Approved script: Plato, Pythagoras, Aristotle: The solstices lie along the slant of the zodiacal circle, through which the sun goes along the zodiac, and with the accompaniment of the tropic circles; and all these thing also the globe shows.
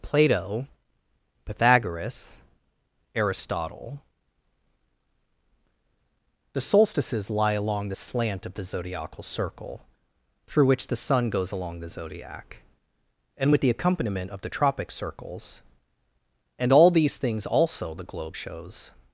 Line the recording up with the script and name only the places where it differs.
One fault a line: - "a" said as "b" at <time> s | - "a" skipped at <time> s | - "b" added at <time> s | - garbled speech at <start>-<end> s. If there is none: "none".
- "thing" said as "things" at 17.2 s